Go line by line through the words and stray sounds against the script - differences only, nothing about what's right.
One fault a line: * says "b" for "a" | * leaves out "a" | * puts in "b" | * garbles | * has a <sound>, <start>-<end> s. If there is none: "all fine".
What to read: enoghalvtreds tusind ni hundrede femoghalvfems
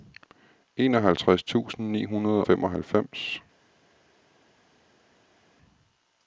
all fine